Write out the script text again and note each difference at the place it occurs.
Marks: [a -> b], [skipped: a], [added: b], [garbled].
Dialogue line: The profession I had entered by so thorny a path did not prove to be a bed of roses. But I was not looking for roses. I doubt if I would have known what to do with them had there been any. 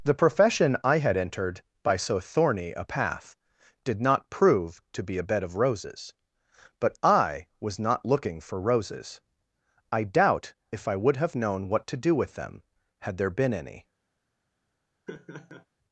The profession I had entered by so thorny a path did not prove to be a bed of roses. But I was not looking for roses. I doubt if I would have known what to do with them had there been any.